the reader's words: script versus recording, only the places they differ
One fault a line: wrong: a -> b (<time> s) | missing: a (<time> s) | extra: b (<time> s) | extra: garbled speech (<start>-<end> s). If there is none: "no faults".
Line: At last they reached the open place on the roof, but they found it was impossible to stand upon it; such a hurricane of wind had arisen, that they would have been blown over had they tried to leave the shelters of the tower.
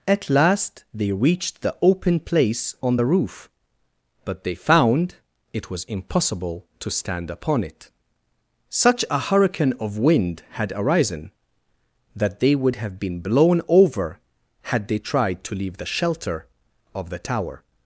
wrong: shelters -> shelter (15.9 s)